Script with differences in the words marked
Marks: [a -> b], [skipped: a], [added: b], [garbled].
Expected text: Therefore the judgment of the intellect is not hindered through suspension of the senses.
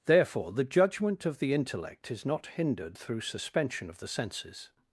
Therefore the judgment of the intellect is not hindered through suspension of the senses.